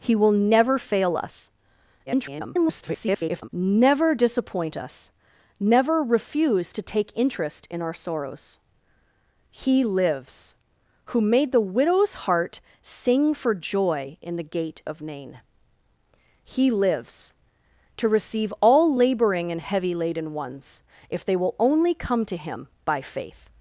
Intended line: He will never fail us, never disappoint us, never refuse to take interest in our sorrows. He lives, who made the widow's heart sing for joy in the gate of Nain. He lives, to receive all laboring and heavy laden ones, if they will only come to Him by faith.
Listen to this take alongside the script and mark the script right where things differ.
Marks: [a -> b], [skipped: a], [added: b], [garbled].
He will never fail us, [garbled] never disappoint us, never refuse to take interest in our sorrows. He lives, who made the widow's heart sing for joy in the gate of Nain. He lives, to receive all laboring and heavy laden ones, if they will only come to Him by faith.